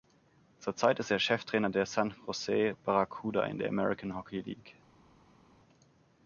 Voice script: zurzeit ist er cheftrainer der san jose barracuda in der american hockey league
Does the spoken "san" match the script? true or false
true